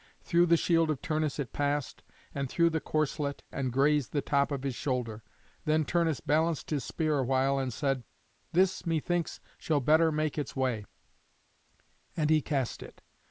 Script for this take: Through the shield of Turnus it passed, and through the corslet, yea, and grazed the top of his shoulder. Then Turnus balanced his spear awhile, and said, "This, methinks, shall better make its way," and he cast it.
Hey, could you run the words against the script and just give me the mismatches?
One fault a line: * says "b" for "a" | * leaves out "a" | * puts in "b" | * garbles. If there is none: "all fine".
* leaves out "yea"